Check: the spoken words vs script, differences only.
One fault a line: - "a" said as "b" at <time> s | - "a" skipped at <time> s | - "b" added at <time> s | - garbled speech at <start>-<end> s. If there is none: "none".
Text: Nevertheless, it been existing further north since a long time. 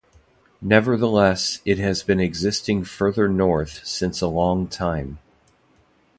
- "has" added at 1.8 s